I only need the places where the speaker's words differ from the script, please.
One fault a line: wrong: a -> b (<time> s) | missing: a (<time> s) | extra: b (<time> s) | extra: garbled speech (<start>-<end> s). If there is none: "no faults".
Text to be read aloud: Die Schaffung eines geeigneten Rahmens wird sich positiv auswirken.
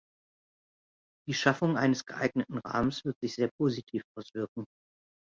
extra: sehr (3.4 s)